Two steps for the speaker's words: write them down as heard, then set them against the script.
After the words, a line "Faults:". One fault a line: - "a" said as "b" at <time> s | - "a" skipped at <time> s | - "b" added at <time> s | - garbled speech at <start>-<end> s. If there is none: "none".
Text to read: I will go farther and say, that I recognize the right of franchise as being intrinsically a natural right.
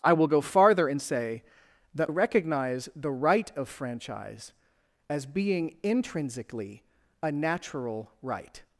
I will go farther and say, that recognize the right of franchise as being intrinsically a natural right.
Faults:
- "I" skipped at 2.1 s